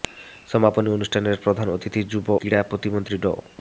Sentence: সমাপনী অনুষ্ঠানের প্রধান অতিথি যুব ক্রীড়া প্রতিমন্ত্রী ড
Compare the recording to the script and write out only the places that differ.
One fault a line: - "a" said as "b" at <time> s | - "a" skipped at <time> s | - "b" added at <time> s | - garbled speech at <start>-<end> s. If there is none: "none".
none